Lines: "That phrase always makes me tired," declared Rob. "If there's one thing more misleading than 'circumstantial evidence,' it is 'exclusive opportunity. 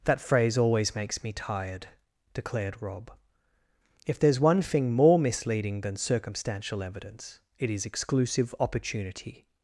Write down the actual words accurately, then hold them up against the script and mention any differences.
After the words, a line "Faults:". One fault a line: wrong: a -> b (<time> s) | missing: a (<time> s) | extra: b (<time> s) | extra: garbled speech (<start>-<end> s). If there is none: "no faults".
"That phrase always makes me tired," declared Rob. "If there's one thing more misleading than 'circumstantial evidence,' it is 'exclusive opportunity.
Faults:
no faults